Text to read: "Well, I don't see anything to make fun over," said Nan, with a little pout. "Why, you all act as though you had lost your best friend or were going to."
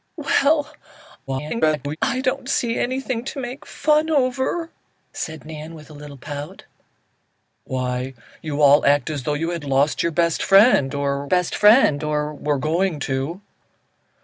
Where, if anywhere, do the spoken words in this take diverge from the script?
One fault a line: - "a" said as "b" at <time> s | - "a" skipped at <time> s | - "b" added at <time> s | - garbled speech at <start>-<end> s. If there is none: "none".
- garbled speech at 1.3-2.0 s
- "best friend or" added at 11.2 s